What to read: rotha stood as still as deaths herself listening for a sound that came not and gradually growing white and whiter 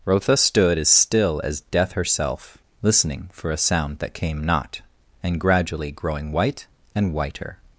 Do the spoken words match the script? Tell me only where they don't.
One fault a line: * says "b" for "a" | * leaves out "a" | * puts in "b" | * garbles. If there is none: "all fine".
* says "death" for "deaths"